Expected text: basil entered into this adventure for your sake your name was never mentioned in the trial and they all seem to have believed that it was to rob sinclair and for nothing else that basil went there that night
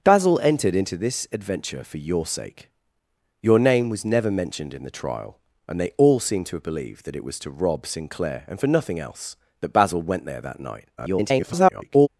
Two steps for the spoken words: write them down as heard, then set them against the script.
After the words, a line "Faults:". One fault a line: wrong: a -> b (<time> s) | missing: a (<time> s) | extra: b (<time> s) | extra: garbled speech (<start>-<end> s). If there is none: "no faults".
basil entered into this adventure for your sake your name was never mentioned in the trial and they all seem to have believed that it was to rob sinclair and for nothing else that basil went there that night [garbled]
Faults:
extra: garbled speech (11.0-12.1 s)